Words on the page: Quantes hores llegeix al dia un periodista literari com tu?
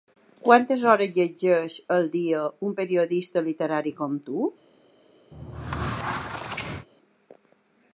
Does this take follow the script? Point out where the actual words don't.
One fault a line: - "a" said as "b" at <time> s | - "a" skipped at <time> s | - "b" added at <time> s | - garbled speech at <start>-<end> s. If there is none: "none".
none